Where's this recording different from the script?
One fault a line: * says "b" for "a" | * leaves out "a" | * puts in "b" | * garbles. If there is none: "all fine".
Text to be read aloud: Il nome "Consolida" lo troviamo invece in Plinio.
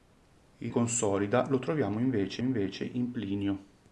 * leaves out "nome"
* puts in "invece"